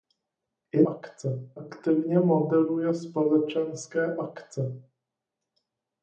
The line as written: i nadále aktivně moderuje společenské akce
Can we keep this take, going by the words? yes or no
no